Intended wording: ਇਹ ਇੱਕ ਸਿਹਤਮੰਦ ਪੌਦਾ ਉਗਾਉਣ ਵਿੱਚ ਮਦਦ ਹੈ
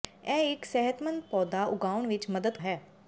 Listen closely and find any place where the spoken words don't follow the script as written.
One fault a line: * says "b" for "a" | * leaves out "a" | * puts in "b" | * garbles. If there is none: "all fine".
all fine